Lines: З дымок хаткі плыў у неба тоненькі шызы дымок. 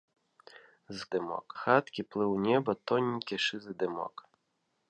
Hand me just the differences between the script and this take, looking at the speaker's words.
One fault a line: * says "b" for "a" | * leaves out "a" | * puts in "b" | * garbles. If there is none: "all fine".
all fine